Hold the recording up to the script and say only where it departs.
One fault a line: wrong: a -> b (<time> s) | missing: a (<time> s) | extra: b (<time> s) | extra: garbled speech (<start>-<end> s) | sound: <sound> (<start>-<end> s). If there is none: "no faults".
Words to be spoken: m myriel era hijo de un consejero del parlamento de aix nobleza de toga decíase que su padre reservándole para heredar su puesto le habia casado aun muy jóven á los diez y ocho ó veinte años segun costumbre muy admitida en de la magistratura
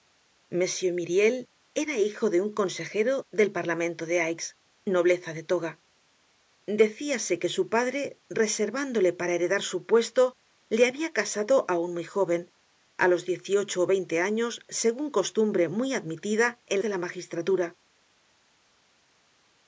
no faults